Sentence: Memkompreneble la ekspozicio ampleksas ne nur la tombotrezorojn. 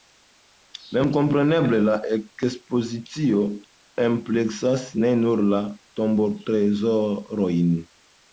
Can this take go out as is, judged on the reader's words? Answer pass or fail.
pass